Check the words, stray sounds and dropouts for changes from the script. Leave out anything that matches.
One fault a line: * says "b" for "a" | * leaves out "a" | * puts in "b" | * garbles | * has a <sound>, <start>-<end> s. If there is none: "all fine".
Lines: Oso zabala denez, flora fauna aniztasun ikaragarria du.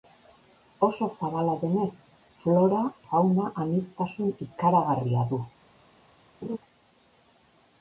* has a laugh, 6.4-6.6 s